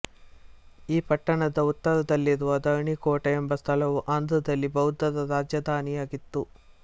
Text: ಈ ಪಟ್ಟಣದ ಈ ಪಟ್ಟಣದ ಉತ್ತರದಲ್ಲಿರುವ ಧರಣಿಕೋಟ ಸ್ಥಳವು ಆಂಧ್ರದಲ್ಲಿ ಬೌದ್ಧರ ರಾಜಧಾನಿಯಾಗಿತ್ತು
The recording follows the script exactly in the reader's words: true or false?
false